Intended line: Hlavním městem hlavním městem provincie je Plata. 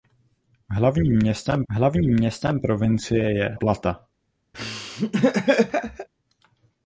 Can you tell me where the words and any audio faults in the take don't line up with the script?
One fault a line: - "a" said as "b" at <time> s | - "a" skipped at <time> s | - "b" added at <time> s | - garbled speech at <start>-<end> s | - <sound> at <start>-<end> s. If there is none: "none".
- laugh at 4.5-6.1 s